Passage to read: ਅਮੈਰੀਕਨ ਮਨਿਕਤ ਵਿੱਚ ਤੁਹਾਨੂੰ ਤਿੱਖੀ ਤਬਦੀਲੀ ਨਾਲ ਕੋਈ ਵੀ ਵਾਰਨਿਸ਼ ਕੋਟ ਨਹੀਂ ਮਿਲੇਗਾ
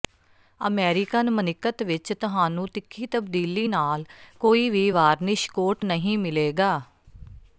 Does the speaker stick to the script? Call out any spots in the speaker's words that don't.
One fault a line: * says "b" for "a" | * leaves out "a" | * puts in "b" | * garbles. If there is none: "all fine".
all fine